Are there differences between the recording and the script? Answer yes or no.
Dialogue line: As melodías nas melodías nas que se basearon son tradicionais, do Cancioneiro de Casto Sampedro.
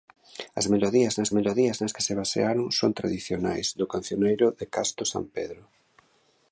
no